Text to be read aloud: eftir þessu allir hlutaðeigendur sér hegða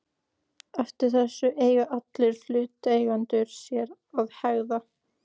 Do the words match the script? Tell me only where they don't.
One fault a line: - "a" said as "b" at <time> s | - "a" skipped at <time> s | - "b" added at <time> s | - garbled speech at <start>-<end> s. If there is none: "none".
- "eiga" added at 1.6 s
- "að" added at 4.2 s